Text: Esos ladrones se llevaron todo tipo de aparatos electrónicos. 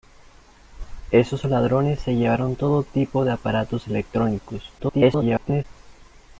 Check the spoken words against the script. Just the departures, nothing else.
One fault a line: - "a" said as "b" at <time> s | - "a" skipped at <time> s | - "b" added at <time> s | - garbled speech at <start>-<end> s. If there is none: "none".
- garbled speech at 4.8-5.6 s